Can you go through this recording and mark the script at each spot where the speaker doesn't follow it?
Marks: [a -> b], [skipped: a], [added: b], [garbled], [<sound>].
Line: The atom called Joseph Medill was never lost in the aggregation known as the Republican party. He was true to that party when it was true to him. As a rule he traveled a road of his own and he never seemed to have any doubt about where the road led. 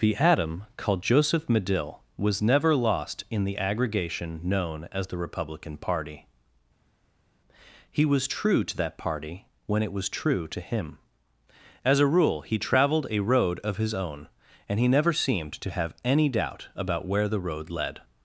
The atom called Joseph Medill was never lost in the aggregation known as the Republican party. He was true to that party when it was true to him. As a rule he traveled a road of his own and he never seemed to have any doubt about where the road led.